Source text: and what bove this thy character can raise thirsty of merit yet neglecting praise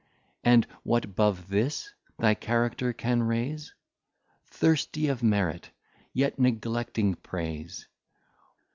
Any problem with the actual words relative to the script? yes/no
no